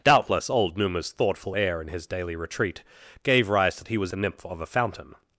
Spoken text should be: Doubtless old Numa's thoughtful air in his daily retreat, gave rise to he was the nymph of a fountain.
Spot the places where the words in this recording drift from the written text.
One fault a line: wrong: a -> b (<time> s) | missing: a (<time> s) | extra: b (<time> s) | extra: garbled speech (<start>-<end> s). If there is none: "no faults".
no faults